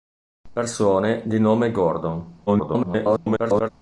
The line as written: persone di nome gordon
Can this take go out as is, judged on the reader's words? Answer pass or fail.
fail